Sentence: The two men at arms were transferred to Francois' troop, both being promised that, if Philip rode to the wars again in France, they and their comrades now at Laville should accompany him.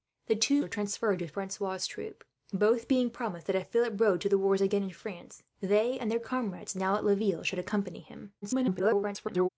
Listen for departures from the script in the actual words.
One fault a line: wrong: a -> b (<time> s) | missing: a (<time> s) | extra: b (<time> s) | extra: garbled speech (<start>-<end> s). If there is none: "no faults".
missing: men at arms (0.6 s)
extra: garbled speech (8.4-9.5 s)